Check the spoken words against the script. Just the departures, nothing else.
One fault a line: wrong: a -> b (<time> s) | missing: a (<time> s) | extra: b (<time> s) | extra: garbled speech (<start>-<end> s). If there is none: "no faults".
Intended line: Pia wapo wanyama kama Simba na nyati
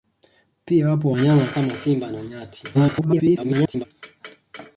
extra: garbled speech (2.7-3.9 s)